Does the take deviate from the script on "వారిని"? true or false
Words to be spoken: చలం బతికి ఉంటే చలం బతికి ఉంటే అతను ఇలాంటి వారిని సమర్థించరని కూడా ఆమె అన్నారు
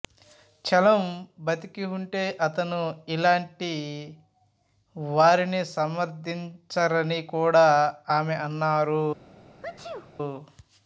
false